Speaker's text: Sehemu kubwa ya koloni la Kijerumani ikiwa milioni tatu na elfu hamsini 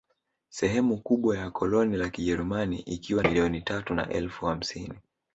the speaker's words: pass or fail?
pass